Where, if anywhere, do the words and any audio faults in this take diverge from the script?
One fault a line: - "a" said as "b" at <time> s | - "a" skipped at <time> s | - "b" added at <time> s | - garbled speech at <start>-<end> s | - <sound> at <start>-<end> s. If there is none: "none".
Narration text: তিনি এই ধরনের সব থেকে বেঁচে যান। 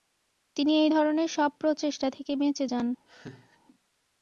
- "প্রচেষ্টা" added at 1.6 s
- laugh at 3.1-3.6 s